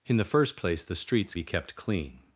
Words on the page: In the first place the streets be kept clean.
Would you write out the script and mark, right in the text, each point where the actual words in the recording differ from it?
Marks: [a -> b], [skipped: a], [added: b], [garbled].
In the first place the streets be kept clean.